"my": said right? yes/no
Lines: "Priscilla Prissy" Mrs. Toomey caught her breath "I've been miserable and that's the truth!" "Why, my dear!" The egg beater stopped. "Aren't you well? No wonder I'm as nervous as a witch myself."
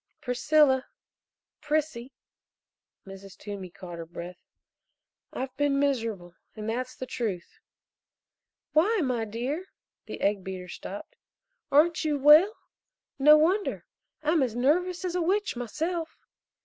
yes